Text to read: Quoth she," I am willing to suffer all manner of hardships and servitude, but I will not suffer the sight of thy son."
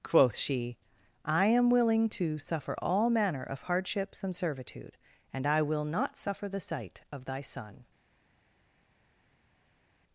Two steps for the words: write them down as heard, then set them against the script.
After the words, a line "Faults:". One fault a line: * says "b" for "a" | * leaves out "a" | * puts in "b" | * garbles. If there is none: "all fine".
Quoth she," I am willing to suffer all manner of hardships and servitude, and I will not suffer the sight of thy son."
Faults:
* says "and" for "but"